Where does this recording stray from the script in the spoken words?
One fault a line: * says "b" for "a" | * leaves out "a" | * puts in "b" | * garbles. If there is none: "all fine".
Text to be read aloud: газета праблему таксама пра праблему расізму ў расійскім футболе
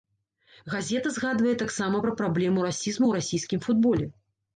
* says "згадвае" for "праблему"